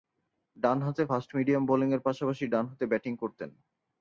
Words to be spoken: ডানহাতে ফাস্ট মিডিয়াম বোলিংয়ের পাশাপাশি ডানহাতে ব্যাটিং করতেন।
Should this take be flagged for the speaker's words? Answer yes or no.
no